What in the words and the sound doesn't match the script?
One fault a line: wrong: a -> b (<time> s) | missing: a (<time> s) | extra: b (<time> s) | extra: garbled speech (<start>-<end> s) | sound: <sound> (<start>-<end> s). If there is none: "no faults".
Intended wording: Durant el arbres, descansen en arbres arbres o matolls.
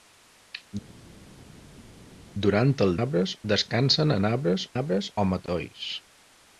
no faults